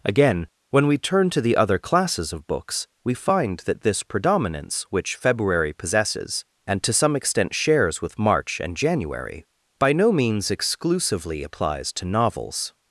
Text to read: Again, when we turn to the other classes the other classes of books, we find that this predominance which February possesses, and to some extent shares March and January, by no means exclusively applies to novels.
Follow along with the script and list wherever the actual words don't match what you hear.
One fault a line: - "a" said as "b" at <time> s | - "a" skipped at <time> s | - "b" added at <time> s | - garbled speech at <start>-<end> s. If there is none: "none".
- "the other classes" skipped at 2.3 s
- "with" added at 8.0 s